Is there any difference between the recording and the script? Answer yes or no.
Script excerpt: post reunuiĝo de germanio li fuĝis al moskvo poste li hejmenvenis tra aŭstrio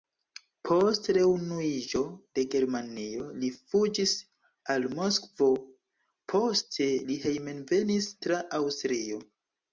no